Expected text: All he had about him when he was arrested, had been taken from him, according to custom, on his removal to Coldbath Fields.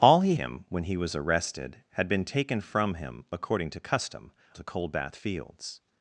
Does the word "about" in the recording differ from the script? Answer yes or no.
yes